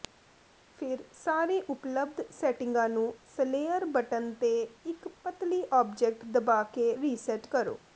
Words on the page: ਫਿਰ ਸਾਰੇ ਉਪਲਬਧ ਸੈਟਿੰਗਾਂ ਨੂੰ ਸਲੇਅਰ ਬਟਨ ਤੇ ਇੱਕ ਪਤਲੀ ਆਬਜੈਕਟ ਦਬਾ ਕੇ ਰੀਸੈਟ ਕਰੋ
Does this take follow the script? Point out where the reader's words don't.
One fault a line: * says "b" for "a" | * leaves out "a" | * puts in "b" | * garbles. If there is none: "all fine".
all fine